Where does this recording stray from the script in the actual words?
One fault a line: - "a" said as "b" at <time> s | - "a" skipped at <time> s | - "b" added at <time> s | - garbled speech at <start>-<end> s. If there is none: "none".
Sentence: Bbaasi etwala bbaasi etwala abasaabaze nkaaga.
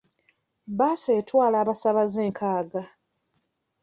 - "bbaasi etwala" skipped at 1.6 s